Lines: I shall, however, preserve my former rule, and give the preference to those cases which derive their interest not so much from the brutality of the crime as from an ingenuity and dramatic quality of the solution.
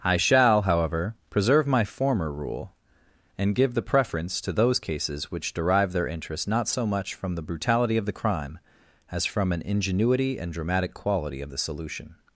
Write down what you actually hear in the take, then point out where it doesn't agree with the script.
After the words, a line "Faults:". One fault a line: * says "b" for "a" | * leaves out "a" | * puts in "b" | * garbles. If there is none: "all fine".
I shall, however, preserve my former rule, and give the preference to those cases which derive their interest not so much from the brutality of the crime as from an ingenuity and dramatic quality of the solution.
Faults:
all fine